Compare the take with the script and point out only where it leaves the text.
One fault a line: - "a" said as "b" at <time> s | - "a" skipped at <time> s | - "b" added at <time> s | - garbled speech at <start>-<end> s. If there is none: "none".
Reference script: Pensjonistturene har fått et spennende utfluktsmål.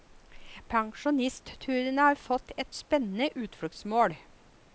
none